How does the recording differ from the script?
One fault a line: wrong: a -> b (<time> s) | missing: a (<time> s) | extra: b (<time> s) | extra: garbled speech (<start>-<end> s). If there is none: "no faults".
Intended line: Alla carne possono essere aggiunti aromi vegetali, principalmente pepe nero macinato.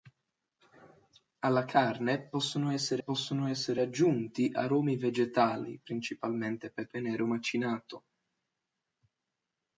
extra: possono essere (3.0 s)